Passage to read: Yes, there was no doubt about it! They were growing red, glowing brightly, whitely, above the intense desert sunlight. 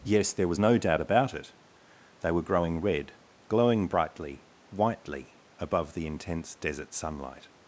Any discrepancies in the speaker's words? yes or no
no